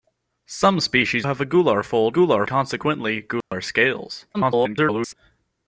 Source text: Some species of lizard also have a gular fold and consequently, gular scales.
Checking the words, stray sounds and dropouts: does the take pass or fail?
fail